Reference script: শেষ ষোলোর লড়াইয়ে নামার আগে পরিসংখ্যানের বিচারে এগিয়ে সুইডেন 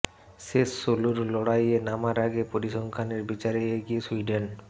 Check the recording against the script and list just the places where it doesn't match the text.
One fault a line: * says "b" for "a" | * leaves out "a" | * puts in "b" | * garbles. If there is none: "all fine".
all fine